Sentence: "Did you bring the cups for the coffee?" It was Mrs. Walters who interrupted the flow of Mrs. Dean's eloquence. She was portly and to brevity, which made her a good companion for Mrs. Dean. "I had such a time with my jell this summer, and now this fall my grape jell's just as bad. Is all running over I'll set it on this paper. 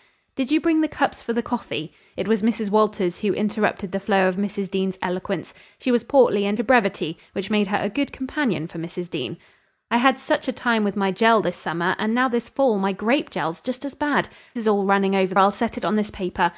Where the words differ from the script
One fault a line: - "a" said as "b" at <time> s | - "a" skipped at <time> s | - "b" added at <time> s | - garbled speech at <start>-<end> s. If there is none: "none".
none